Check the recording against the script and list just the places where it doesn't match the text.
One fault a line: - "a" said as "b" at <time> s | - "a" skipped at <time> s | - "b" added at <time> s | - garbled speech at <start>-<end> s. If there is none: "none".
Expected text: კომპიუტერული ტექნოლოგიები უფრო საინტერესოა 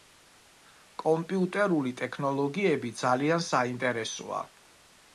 - "უფრო" said as "ძალიან" at 3.0 s